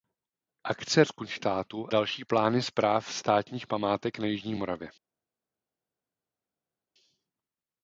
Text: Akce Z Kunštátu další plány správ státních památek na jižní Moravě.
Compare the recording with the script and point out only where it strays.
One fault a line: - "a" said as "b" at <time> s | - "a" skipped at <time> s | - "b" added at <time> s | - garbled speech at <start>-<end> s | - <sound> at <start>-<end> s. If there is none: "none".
none